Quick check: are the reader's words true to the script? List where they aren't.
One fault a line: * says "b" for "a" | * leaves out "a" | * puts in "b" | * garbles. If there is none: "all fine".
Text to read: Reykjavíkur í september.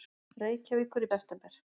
all fine